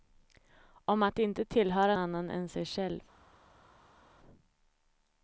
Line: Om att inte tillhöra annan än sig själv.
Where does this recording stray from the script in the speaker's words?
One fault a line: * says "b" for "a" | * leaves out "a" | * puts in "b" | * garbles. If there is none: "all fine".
all fine